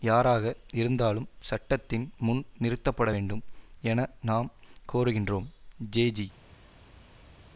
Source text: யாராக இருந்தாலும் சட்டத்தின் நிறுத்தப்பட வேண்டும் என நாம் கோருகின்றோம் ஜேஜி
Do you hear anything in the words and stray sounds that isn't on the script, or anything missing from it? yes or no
yes